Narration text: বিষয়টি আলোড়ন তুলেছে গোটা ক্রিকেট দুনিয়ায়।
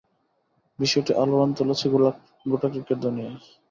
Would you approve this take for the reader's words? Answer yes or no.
yes